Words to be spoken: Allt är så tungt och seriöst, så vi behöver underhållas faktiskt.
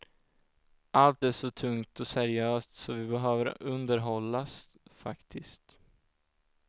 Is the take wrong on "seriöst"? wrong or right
right